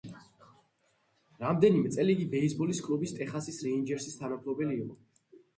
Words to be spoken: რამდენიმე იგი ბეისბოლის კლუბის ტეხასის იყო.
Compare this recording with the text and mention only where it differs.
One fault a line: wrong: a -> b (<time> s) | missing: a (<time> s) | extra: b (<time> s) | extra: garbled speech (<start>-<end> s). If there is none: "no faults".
extra: წელი (2.0 s)
extra: რეინჯერსის თანამფლობელი (3.7 s)